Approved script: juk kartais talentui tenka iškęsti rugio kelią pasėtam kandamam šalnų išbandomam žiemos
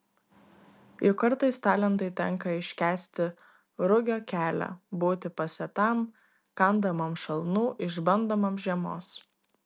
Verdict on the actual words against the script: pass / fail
fail